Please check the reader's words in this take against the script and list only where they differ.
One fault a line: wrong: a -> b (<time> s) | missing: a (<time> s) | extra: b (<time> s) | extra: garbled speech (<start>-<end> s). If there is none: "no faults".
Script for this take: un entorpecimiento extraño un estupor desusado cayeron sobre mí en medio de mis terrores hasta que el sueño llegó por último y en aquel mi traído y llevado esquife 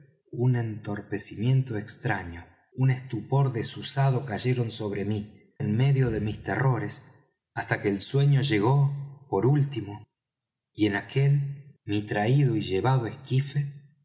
no faults